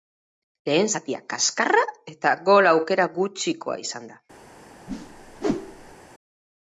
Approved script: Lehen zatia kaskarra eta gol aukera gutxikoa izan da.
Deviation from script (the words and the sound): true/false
true